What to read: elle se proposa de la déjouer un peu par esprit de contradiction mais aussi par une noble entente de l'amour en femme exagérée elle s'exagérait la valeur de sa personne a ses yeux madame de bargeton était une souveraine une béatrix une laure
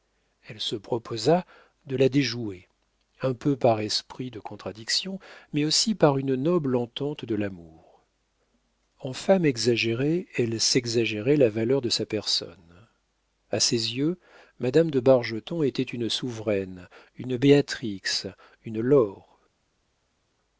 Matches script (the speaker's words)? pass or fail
pass